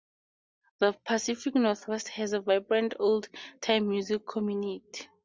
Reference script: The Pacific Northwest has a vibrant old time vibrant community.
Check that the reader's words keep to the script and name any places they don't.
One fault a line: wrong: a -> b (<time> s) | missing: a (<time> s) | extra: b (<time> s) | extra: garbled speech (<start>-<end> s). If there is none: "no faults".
wrong: vibrant -> music (3.9 s)